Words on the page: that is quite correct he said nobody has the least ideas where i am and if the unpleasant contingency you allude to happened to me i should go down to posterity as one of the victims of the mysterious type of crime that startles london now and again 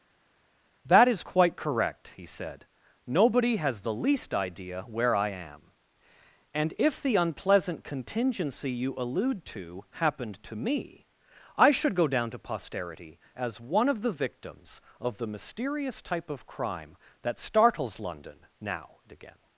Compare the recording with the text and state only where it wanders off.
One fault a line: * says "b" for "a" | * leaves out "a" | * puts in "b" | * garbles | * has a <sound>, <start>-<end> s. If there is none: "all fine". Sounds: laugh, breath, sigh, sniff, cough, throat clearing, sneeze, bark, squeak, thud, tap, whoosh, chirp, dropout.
* says "idea" for "ideas"